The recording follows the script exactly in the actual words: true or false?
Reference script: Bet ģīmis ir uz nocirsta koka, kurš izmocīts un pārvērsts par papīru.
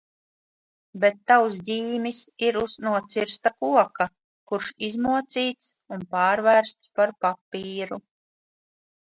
false